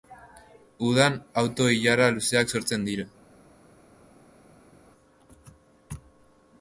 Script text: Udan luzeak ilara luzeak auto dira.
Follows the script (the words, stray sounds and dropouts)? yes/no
no